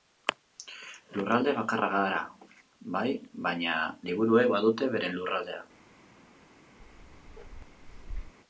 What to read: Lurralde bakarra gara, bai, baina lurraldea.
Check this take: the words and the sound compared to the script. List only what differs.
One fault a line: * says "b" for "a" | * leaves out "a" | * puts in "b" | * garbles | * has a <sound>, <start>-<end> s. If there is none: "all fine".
* puts in "liburuek badute beren"
* has a bark, 6.8-8.3 s